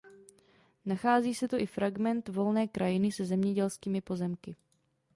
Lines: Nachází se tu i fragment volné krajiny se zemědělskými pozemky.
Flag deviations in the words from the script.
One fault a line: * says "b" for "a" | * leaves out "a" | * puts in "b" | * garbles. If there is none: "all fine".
all fine